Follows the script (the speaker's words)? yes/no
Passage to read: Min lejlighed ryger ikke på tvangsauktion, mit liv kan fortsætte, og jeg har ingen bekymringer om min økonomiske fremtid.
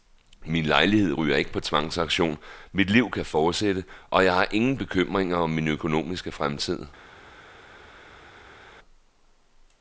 yes